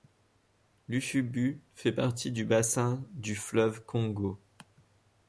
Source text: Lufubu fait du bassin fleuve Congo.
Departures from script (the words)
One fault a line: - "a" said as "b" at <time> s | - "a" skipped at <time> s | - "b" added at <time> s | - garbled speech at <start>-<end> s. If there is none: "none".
- "partie" added at 1.9 s
- "du" added at 3.1 s